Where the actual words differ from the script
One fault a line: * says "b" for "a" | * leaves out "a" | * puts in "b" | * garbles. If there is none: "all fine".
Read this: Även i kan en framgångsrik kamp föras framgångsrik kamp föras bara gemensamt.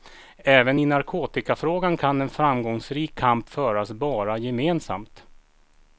* puts in "narkotikafrågan"
* leaves out "framgångsrik kamp föras"